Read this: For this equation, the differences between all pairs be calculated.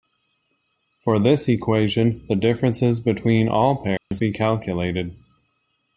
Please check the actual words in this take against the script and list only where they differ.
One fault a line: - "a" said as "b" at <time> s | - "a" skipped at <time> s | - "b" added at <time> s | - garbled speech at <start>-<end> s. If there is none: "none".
none